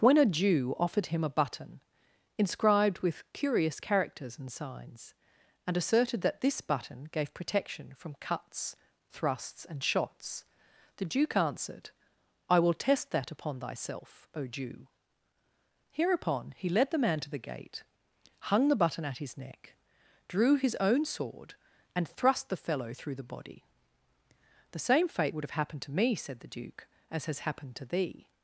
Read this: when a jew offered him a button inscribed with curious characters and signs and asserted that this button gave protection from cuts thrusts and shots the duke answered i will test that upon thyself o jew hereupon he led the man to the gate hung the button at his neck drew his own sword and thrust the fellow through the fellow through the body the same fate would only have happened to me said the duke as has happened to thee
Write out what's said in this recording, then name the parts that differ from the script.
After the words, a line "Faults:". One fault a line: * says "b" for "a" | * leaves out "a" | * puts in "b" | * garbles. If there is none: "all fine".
when a jew offered him a button inscribed with curious characters and signs and asserted that this button gave protection from cuts thrusts and shots the duke answered i will test that upon thyself o jew hereupon he led the man to the gate hung the button at his neck drew his own sword and thrust the fellow through the body the same fate would have happened to me said the duke as has happened to thee
Faults:
* leaves out "fellow through the"
* leaves out "only"